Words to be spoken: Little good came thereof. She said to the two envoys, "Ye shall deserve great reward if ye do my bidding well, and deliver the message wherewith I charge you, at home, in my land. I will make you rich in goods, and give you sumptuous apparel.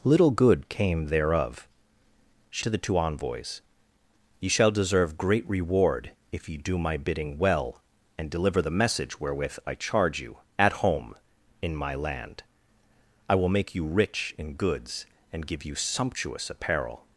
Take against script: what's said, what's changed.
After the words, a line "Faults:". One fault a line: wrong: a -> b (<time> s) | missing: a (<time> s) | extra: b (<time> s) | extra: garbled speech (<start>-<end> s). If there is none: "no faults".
Little good came thereof. She to the two envoys, "Ye shall deserve great reward if ye do my bidding well, and deliver the message wherewith I charge you, at home, in my land. I will make you rich in goods, and give you sumptuous apparel.
Faults:
missing: said (2.6 s)